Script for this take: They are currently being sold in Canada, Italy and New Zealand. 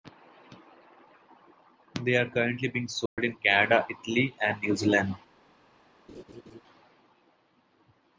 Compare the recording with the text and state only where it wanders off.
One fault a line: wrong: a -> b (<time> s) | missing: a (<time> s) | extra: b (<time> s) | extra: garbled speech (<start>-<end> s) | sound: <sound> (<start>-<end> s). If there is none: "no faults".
sound: dropout (3.1-3.2 s)
sound: laugh (6.1-6.6 s)